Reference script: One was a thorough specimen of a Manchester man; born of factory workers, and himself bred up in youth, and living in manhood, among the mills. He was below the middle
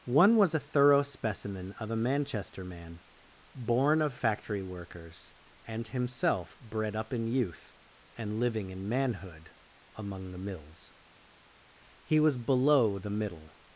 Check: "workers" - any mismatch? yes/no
no